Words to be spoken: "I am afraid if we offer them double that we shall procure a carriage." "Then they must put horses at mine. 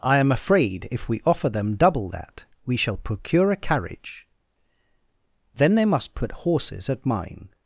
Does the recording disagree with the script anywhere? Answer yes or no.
no